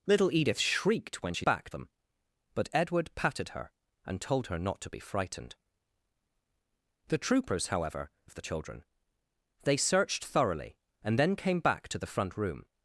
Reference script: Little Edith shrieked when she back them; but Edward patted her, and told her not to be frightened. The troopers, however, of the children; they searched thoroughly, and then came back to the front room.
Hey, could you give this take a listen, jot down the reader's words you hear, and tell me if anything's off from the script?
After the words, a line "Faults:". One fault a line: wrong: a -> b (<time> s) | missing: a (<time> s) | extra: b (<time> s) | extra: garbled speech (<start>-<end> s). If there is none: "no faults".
Little Edith shrieked when she back them; but Edward patted her, and told her not to be frightened. The troopers, however, of the children; they searched thoroughly, and then came back to the front room.
Faults:
no faults